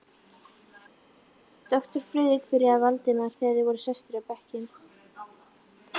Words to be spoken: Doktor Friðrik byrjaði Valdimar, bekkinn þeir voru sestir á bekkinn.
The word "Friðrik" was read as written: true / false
true